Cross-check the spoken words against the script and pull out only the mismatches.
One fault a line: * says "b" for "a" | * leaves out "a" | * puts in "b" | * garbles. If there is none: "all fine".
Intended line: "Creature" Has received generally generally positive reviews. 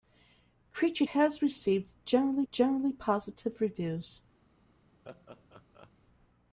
all fine